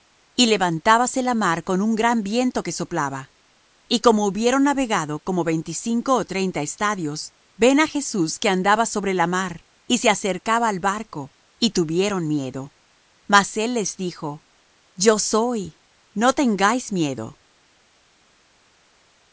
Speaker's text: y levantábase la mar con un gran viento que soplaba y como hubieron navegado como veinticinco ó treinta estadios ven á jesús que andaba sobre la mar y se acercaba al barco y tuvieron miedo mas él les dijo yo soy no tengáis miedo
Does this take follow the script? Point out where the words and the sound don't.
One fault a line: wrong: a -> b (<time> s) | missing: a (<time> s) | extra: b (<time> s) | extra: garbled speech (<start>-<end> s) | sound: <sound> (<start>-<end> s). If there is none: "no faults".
no faults